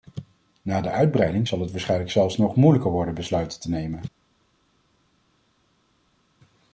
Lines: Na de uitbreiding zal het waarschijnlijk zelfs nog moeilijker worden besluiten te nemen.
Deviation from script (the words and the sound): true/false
false